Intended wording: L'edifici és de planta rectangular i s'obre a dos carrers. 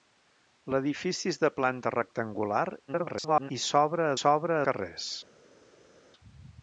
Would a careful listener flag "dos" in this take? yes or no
yes